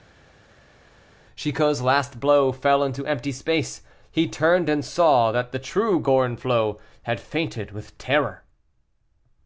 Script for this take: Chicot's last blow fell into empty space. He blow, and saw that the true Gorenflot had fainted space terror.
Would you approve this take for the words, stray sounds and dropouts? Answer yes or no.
no